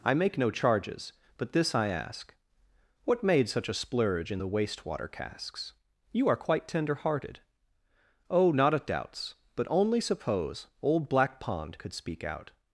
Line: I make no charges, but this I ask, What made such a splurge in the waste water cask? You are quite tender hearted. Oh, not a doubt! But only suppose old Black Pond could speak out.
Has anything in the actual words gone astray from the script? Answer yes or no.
yes